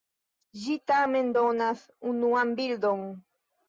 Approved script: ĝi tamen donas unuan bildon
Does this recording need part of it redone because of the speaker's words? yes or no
no